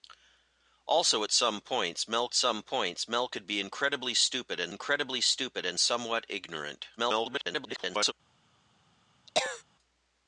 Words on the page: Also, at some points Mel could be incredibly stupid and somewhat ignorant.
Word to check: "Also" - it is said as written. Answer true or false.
true